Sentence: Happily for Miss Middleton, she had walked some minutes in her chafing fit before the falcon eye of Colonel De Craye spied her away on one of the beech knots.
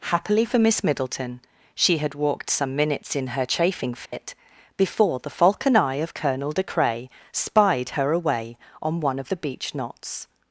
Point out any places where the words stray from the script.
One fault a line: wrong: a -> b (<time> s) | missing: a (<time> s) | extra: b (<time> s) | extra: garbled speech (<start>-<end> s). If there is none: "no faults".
no faults